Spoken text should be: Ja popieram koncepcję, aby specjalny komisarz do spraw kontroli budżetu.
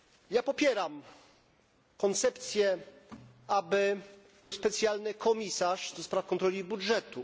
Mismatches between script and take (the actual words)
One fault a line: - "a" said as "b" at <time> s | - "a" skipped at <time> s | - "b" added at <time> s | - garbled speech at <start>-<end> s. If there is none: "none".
none